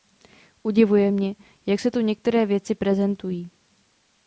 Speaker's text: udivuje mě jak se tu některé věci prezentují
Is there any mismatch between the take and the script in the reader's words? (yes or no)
no